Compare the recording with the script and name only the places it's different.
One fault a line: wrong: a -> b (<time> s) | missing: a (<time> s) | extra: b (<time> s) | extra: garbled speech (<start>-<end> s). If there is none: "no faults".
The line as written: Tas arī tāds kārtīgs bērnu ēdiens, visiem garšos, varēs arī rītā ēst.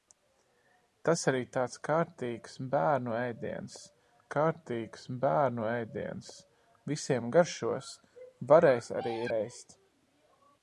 extra: kārtīgs bērnu ēdiens (4.3 s)
missing: rītā (9.1 s)